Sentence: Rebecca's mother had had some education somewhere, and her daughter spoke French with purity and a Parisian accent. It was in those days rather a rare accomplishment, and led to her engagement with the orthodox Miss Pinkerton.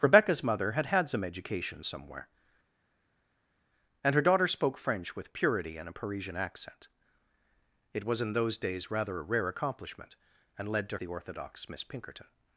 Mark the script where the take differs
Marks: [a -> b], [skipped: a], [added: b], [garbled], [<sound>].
Rebecca's mother had had some education somewhere, and her daughter spoke French with purity and a Parisian accent. It was in those days rather a rare accomplishment, and led to [skipped: her engagement with] the orthodox Miss Pinkerton.